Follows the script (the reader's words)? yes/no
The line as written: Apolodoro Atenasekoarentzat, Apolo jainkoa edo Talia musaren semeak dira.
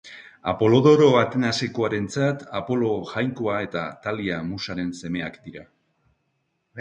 no